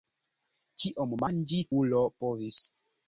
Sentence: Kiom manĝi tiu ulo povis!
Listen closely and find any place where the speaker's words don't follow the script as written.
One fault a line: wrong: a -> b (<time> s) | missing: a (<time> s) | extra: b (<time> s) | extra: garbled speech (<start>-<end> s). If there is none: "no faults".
missing: tiu (1.6 s)